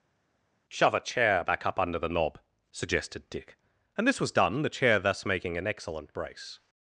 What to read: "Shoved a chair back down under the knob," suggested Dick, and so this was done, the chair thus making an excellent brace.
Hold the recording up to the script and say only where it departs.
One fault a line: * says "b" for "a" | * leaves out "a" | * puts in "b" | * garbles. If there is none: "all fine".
* says "Shove" for "Shoved"
* says "up" for "down"
* leaves out "so"